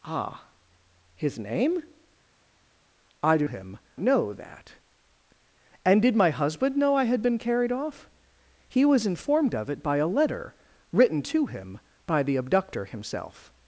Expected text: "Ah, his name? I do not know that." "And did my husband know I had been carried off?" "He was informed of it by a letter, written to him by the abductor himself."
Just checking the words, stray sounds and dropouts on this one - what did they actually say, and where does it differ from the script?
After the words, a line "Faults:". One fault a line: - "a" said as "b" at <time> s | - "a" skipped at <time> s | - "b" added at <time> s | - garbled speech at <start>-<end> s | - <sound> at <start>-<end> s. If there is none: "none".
"Ah, his name? I do him know that." "And did my husband know I had been carried off?" "He was informed of it by a letter, written to him by the abductor himself."
Faults:
- "not" said as "him" at 3.4 s